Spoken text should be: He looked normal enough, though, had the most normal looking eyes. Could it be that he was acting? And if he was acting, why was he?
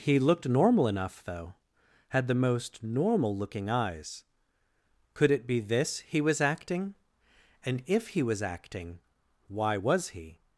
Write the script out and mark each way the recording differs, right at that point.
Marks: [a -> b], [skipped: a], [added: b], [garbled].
He looked normal enough, though, had the most normal looking eyes. Could it be [that -> this] he was acting? And if he was acting, why was he?